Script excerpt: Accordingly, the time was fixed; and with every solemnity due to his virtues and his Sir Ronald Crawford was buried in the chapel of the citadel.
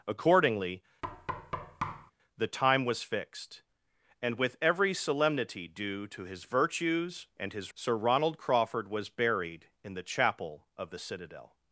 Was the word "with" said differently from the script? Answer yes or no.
no